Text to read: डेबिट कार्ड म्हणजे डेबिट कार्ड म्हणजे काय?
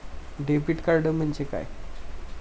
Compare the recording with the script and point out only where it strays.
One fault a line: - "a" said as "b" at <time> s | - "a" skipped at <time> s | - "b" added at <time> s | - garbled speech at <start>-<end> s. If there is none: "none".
- "डेबिट कार्ड म्हणजे" skipped at 1.4 s